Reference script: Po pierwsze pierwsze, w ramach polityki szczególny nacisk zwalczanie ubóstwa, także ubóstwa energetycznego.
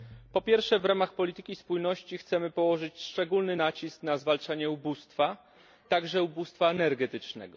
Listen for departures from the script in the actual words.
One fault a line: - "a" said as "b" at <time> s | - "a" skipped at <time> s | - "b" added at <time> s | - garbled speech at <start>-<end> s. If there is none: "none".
- "pierwsze" skipped at 0.8 s
- "spójności chcemy położyć" added at 1.6 s
- "na" added at 4.0 s